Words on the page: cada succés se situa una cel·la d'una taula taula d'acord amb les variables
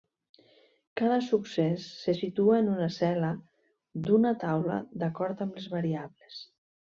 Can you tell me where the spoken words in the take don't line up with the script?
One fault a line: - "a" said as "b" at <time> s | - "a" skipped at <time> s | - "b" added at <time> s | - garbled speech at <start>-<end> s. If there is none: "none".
- "en" added at 2.6 s
- "taula" skipped at 4.8 s